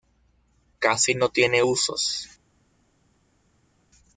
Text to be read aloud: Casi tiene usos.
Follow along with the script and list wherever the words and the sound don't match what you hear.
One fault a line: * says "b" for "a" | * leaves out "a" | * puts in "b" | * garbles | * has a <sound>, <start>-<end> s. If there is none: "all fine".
* puts in "no"